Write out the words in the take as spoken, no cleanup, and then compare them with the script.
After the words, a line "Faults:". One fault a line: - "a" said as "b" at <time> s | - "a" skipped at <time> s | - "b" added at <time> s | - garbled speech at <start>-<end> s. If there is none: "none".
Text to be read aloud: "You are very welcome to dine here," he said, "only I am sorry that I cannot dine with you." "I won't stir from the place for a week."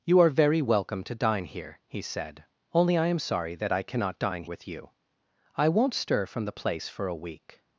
"You are very welcome to dine here," he said, "only I am sorry that I cannot dine with you." "I won't stir from the place for a week."
Faults:
none